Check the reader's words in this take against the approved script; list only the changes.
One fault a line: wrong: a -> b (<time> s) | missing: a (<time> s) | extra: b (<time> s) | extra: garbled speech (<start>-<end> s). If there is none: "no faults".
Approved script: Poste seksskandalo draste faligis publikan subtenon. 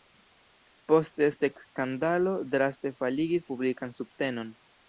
no faults